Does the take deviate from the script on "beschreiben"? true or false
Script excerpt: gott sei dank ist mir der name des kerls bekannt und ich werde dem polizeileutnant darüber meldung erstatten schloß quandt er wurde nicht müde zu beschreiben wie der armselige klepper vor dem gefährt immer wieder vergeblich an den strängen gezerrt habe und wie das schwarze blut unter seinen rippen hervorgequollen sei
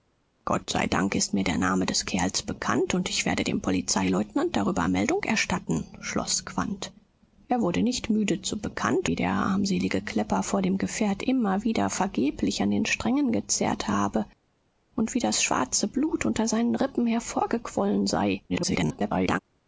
true